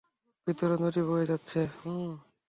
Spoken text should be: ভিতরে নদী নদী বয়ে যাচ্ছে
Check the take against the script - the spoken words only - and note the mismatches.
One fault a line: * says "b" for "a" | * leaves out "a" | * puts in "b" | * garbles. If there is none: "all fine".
* leaves out "নদী"